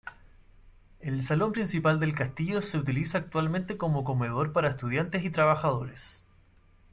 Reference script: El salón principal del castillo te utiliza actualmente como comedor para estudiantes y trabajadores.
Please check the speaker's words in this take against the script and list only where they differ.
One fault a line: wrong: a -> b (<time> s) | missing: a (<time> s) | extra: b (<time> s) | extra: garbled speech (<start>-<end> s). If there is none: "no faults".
wrong: te -> se (2.6 s)